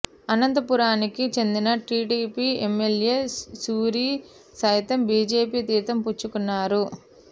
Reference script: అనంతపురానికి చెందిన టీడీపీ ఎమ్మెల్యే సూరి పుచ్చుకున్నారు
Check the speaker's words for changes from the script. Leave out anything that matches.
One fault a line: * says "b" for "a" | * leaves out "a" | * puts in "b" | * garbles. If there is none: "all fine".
* puts in "సైతం బీజేపీ తీర్థం"